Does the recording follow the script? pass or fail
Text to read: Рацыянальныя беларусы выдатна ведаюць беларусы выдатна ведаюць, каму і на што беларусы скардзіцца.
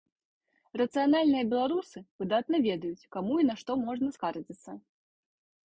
fail